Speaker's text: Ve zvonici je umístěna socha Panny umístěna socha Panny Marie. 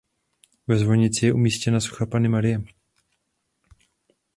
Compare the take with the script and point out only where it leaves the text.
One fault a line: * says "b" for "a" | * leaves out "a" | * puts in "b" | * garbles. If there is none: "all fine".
* leaves out "umístěna socha Panny"